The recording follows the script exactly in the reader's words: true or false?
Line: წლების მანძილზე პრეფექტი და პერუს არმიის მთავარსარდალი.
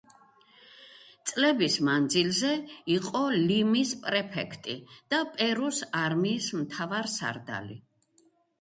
false